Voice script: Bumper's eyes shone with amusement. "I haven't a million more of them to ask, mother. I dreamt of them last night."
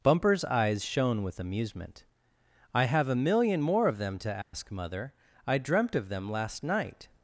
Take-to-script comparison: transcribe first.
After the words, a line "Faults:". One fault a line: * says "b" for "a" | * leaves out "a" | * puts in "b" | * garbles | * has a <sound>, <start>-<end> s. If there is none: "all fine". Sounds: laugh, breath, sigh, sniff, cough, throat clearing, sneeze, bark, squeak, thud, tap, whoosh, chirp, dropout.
Bumper's eyes shone with amusement. "I have a million more of them to ask, mother. I dreamt of them last night."
Faults:
* says "have" for "haven't"
* has a dropout, 4.4-4.5 s